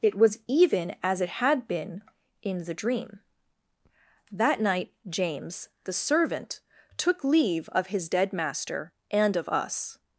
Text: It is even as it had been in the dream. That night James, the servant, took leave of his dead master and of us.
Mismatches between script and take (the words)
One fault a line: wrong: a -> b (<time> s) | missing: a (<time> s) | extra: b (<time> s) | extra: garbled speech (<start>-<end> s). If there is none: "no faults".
wrong: is -> was (0.1 s)